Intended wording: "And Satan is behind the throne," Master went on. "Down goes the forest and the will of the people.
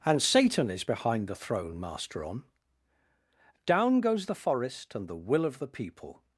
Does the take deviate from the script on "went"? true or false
true